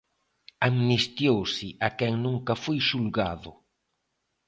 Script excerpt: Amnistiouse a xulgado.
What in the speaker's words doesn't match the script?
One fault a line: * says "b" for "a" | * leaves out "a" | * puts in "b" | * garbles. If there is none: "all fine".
* puts in "quen nunca foi"